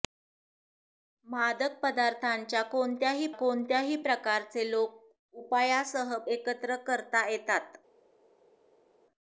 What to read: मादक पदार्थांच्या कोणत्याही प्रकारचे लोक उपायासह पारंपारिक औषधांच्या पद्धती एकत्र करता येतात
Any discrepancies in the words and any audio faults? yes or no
yes